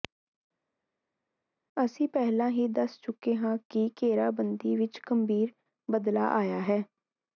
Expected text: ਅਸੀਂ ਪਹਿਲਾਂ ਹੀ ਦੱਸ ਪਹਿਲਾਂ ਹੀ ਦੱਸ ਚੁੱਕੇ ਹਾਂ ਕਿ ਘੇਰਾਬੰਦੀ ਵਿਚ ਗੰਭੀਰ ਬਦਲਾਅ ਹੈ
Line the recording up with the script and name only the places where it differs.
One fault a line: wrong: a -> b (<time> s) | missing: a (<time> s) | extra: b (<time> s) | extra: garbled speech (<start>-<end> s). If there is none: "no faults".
missing: ਪਹਿਲਾਂ ਹੀ ਦੱਸ (3.0 s)
extra: ਆਇਆ (6.4 s)